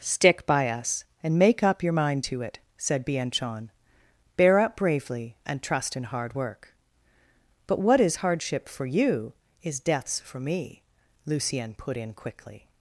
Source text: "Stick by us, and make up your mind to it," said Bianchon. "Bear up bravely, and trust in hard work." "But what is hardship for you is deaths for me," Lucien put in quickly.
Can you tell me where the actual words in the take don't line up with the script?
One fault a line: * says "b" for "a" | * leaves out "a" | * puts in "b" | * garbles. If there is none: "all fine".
all fine